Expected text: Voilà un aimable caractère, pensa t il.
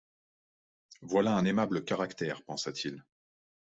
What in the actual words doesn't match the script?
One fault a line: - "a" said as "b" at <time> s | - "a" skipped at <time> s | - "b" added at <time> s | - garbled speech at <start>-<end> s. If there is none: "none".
none